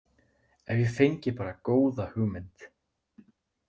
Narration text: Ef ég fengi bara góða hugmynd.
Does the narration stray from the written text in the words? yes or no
no